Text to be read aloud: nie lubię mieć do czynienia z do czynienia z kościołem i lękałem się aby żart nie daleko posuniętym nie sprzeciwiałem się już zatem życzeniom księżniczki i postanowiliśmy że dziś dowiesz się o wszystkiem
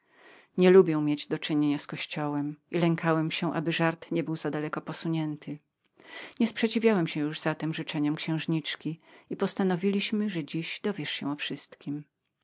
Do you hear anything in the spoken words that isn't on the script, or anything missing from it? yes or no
yes